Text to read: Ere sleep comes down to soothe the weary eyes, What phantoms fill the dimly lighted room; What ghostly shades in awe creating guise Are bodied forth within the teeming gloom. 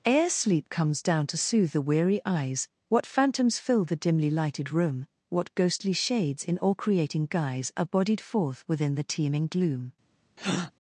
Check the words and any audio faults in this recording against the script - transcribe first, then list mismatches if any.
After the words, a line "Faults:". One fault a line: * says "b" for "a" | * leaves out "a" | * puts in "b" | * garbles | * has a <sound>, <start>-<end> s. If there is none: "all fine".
Ere sleep comes down to soothe the weary eyes, What phantoms fill the dimly lighted room; What ghostly shades in all creating guise Are bodied forth within the teeming gloom.
Faults:
* says "all" for "awe"
* has a breath, 10.4-10.7 s